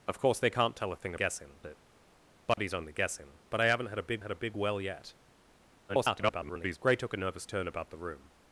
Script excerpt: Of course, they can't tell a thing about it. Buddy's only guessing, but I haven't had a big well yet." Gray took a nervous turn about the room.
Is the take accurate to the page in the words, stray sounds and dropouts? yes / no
no